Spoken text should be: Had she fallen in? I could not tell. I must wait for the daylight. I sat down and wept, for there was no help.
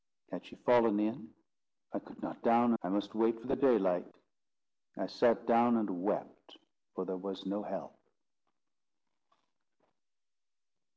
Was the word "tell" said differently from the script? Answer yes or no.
yes